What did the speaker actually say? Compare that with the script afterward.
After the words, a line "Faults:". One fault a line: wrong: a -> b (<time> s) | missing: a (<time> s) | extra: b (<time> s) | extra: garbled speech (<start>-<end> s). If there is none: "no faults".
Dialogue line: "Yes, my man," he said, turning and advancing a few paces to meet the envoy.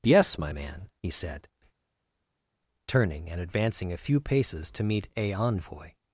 "Yes, my man," he said, turning and advancing a few paces to meet a envoy.
Faults:
wrong: the -> a (5.2 s)